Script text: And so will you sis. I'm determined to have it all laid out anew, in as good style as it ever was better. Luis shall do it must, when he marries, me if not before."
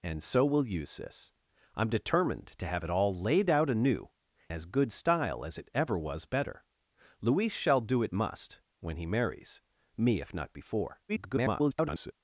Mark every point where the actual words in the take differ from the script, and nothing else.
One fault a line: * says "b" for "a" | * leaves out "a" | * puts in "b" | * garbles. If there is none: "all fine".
* leaves out "in"
* garbles